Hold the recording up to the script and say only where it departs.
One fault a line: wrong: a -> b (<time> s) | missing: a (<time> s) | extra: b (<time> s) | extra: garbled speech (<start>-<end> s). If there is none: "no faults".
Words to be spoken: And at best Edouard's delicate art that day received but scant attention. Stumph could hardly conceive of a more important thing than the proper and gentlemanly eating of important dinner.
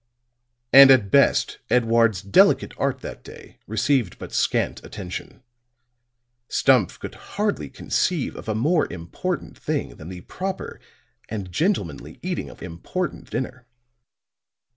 no faults